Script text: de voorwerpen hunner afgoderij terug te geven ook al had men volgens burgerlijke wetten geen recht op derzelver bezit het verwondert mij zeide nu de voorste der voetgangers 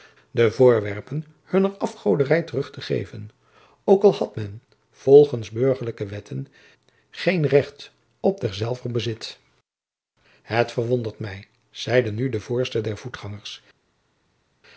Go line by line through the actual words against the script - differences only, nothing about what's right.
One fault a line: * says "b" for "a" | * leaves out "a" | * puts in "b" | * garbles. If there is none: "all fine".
all fine